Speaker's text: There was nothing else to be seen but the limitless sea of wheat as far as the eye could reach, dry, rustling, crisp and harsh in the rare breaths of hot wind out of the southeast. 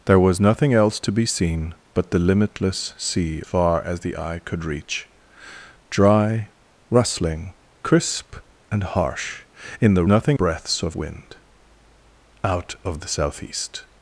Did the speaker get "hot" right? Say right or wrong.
wrong